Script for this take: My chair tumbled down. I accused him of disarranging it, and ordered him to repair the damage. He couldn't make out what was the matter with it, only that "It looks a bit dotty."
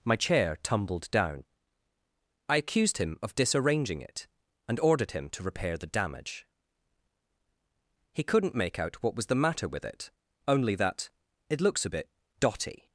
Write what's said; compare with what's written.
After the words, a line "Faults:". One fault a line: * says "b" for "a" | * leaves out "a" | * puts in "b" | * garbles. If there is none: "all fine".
My chair tumbled down. I accused him of disarranging it, and ordered him to repair the damage. He couldn't make out what was the matter with it, only that "It looks a bit dotty."
Faults:
all fine